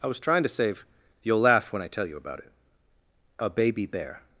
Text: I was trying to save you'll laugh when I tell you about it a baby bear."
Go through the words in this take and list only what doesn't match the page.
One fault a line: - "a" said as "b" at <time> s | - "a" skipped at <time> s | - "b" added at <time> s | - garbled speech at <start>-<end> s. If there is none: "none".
none